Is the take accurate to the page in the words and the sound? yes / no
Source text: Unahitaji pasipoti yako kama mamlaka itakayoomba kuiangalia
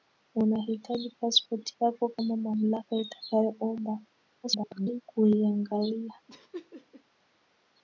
no